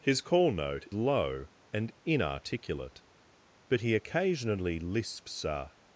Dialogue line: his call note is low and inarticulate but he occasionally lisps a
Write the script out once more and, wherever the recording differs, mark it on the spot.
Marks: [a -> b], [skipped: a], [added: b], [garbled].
his call note [skipped: is] low and inarticulate but he occasionally lisps a